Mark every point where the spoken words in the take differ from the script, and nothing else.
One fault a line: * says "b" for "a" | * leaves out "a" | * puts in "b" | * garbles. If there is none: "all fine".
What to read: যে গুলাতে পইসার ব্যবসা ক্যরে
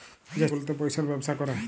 all fine